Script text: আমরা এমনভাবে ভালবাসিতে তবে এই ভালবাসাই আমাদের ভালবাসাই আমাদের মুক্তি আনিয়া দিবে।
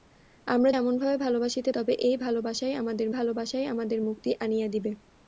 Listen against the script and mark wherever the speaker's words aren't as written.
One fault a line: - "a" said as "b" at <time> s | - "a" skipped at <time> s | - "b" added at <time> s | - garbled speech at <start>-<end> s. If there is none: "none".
none